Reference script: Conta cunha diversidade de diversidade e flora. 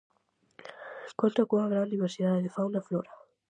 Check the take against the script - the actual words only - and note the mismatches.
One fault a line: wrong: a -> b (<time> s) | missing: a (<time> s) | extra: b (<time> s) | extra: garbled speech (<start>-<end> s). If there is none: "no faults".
extra: gran (1.7 s)
wrong: diversidade -> fauna (2.5 s)